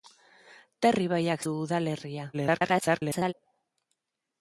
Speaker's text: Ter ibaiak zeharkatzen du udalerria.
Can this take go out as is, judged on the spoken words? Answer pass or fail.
fail